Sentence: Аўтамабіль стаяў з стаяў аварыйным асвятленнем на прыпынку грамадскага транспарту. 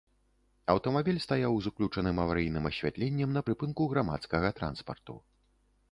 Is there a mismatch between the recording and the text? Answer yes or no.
yes